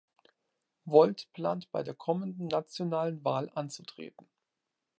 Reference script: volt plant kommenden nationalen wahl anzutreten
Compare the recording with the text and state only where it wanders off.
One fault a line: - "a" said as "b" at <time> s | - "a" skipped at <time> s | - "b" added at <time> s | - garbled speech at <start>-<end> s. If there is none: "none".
- "bei der" added at 1.7 s